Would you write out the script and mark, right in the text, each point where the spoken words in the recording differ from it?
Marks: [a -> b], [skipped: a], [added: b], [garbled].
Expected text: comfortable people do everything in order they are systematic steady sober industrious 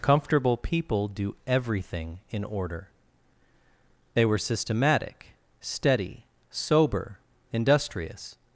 comfortable people do everything in order they [are -> were] systematic steady sober industrious